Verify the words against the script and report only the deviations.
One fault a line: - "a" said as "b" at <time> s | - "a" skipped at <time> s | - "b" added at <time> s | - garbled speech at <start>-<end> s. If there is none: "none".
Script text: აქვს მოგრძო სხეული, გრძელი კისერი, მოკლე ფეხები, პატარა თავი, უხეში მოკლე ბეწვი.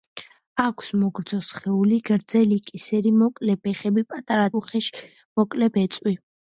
- "თავი" skipped at 4.5 s